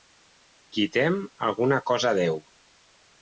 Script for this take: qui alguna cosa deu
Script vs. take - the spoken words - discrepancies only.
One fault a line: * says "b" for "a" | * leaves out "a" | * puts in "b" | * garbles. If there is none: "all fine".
* puts in "tem"